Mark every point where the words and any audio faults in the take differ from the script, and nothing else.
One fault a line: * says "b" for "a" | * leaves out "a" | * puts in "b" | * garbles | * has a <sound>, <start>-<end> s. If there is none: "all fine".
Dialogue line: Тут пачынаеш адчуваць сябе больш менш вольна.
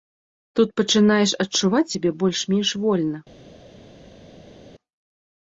all fine